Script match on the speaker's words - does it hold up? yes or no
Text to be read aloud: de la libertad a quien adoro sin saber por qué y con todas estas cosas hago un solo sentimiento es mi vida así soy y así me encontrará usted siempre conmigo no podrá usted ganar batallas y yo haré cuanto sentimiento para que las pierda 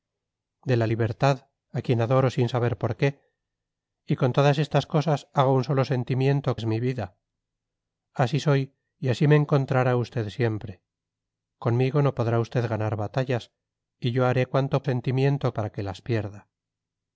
yes